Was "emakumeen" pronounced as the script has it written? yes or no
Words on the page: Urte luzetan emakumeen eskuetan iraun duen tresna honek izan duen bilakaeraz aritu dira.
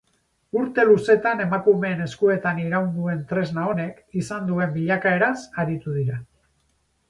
yes